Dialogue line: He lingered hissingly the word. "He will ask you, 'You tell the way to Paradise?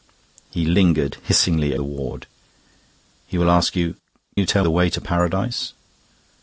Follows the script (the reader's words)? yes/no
yes